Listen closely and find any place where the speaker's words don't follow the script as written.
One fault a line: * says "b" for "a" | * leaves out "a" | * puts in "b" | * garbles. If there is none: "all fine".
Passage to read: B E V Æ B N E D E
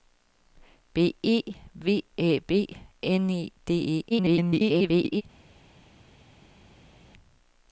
* garbles